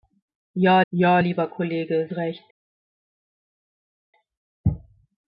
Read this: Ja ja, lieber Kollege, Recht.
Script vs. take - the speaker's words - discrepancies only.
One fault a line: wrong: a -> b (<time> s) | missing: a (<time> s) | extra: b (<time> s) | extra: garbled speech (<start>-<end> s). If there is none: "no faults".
no faults